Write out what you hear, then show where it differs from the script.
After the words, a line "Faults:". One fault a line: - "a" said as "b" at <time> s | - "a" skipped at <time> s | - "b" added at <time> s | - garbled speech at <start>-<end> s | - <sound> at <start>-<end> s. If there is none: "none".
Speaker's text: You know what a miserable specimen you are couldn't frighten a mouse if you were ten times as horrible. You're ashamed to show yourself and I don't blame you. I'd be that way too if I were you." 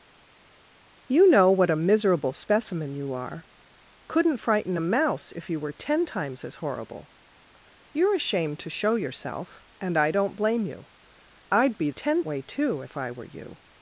You know what a miserable specimen you are couldn't frighten a mouse if you were ten times as horrible. You're ashamed to show yourself and I don't blame you. I'd be ten way too if I were you."
Faults:
- "that" said as "ten" at 11.9 s